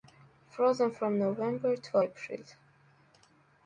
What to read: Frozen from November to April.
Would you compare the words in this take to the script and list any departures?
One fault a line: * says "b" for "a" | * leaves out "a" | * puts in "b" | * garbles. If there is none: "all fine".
all fine